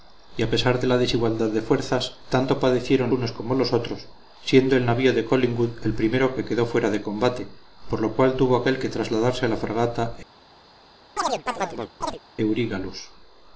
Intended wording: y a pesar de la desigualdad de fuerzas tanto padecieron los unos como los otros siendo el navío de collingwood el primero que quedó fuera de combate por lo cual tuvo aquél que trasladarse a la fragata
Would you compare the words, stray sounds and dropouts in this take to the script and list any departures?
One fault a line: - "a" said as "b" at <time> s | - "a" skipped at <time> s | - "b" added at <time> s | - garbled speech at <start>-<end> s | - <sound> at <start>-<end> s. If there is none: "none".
- "los" skipped at 3.1 s
- chirp at 11.2-12.2 s